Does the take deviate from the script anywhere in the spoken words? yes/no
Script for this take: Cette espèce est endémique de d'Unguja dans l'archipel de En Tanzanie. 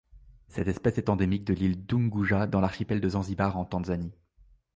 yes